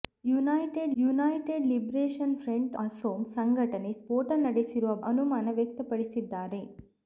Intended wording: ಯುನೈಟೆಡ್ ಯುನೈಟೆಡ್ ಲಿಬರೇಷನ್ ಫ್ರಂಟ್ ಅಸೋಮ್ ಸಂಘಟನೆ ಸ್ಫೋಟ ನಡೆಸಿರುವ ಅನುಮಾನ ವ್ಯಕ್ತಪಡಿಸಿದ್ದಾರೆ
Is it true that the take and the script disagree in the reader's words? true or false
false